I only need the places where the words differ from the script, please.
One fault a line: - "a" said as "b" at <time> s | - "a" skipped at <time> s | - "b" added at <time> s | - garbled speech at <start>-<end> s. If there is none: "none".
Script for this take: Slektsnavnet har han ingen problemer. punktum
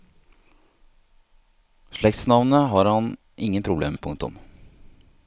none